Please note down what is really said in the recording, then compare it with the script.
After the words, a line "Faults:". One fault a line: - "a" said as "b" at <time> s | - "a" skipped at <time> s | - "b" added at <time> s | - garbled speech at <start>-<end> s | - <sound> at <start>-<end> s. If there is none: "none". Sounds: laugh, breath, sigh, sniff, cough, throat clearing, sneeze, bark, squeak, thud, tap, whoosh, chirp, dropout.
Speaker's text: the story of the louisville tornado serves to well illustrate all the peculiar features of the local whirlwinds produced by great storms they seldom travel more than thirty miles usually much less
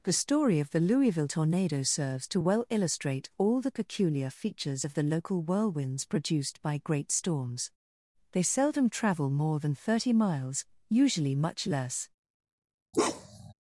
the story of the louisville tornado serves to well illustrate all the peculiar features of the local whirlwinds produced by great storms they seldom travel more than thirty miles usually much less
Faults:
- bark at 12.9-13.5 s